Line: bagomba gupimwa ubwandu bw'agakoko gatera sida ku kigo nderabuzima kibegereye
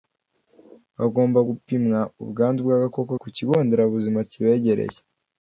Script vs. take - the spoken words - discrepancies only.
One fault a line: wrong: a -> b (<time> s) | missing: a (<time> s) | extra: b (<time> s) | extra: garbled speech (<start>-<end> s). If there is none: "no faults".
missing: gatera sida (3.1 s)